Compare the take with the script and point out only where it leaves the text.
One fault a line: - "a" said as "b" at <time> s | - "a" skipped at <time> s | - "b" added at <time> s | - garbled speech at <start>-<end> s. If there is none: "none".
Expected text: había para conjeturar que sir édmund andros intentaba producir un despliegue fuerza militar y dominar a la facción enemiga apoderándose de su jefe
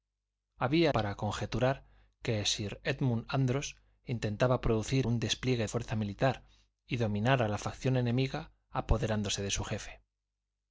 none